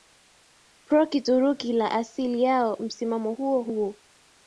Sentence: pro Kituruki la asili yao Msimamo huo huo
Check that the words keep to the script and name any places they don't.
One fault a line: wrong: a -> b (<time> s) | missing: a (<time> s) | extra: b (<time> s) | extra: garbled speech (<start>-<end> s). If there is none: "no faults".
no faults